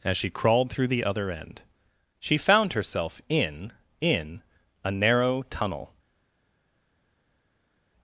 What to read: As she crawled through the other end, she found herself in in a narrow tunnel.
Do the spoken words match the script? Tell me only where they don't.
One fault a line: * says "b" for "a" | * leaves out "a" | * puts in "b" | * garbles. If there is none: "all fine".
all fine